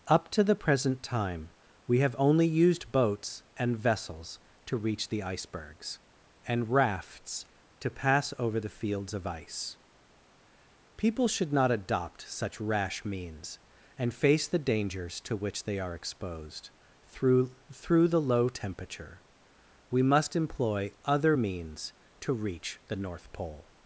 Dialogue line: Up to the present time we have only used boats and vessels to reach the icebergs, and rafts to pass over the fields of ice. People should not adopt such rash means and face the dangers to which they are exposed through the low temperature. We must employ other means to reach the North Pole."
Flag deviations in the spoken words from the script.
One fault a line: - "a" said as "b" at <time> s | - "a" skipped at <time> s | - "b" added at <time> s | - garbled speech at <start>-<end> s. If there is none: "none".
- "through" added at 17.7 s